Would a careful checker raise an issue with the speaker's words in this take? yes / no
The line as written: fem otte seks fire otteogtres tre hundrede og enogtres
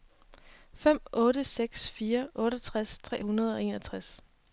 no